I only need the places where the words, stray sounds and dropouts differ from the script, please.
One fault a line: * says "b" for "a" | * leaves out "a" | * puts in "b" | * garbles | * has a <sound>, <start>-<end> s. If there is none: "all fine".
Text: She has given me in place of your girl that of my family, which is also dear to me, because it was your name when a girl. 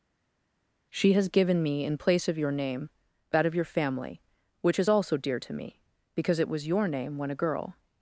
* says "name" for "girl"
* says "your" for "my"